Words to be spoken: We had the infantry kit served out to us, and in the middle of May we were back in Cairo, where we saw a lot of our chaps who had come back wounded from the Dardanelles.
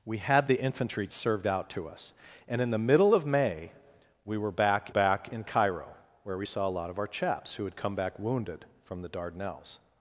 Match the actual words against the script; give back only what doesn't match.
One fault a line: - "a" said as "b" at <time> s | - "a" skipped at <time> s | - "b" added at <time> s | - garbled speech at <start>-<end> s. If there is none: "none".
- "kit" skipped at 1.1 s
- "back" added at 4.9 s